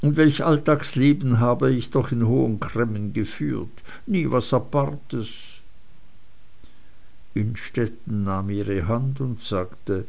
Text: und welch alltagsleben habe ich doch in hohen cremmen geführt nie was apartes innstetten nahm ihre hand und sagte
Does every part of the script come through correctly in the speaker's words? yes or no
yes